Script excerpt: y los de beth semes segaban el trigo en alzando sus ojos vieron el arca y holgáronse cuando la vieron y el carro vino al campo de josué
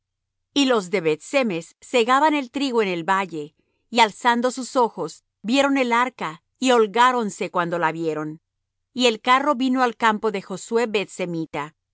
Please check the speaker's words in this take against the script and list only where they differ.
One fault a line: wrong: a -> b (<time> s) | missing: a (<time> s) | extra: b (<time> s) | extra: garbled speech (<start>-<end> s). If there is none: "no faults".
extra: el valle y (2.9 s)